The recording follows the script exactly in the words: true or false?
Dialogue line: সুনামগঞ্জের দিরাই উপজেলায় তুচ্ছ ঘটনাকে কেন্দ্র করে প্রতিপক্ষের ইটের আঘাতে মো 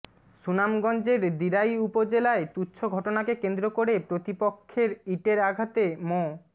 true